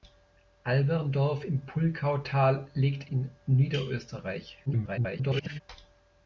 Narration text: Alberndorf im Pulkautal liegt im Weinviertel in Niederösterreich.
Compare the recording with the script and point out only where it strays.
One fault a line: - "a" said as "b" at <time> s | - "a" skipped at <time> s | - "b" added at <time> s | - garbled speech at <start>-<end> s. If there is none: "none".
- "im Weinviertel" skipped at 3.1 s
- garbled speech at 4.7-5.6 s